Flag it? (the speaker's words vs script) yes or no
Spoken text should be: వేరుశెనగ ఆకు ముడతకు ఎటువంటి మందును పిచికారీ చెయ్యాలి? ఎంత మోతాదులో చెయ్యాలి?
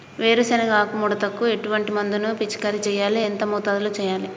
no